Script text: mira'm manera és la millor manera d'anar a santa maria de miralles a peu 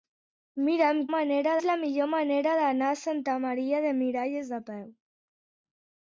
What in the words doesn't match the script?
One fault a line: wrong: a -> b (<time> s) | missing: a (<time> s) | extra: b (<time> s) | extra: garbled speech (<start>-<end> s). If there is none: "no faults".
no faults